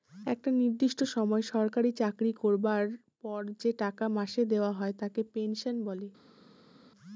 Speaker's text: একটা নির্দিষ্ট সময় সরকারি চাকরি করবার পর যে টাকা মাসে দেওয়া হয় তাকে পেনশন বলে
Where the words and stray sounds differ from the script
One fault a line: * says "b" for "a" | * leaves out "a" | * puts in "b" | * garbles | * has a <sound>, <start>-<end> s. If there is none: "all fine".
all fine